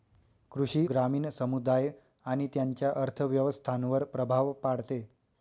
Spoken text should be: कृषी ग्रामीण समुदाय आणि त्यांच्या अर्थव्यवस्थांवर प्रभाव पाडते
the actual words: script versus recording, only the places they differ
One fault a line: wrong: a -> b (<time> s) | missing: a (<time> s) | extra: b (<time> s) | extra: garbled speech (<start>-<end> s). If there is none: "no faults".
no faults